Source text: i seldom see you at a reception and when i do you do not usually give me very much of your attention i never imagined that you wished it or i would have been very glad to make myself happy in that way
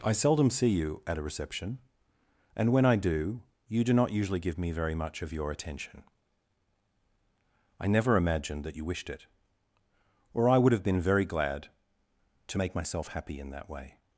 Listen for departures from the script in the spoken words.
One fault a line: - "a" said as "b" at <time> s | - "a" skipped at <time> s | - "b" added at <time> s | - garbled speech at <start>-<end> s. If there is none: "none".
none